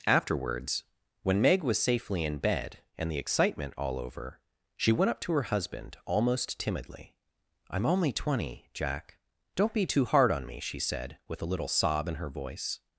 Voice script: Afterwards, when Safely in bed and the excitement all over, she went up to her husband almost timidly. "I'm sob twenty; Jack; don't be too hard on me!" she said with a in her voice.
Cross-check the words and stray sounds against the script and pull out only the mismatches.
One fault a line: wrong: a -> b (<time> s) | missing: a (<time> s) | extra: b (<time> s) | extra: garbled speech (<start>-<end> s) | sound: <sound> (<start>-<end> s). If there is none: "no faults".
extra: Meg was (1.4 s)
wrong: sob -> only (7.9 s)
extra: little sob (11.5 s)